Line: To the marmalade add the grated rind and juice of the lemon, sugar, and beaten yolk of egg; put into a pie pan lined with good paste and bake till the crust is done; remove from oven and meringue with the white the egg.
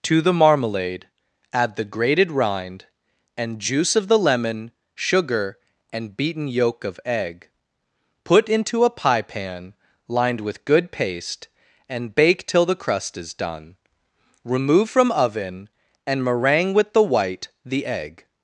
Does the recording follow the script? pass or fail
pass